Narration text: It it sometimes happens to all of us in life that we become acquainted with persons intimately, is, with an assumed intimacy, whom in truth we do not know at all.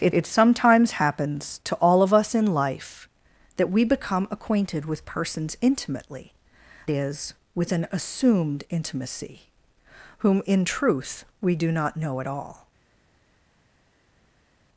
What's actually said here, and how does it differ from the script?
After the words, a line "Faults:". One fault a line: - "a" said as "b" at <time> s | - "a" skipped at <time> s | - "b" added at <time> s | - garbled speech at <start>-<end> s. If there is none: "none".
It it sometimes happens to all of us in life that we become acquainted with persons intimately, is, with an assumed intimacy, whom in truth we do not know at all.
Faults:
none